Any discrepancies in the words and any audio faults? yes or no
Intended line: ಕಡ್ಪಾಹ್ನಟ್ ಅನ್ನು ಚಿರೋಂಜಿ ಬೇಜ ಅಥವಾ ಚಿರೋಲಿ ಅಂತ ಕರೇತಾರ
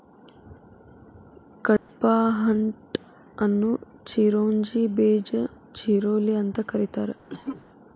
yes